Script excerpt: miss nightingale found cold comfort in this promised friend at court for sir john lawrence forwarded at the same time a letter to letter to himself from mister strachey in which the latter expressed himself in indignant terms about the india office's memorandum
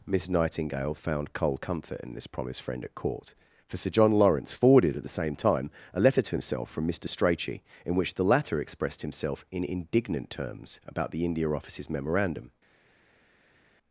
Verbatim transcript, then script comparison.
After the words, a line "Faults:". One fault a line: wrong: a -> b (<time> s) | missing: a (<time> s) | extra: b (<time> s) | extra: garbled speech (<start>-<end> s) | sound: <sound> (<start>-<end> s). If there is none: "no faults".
miss nightingale found cold comfort in this promised friend at court for sir john lawrence forwarded at the same time a letter to himself from mister strachey in which the latter expressed himself in indignant terms about the india office's memorandum
Faults:
missing: letter to (6.4 s)